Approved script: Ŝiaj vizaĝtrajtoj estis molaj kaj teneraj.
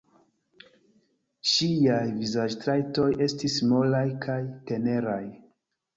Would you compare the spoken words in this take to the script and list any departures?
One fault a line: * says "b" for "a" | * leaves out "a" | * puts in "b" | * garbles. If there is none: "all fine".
all fine